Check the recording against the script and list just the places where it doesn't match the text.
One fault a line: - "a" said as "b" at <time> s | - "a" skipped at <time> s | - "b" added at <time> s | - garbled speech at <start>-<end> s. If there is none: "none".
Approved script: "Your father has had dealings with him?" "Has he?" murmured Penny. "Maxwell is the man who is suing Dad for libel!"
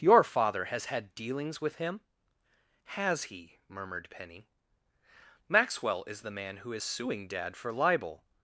none